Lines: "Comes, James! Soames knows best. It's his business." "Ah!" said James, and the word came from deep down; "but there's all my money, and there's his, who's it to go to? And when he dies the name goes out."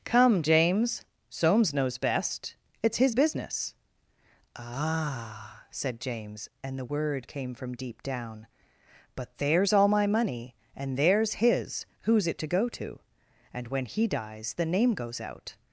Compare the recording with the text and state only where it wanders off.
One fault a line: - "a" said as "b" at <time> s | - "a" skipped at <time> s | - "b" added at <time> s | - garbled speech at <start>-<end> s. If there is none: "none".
- "Comes" said as "Come" at 0.1 s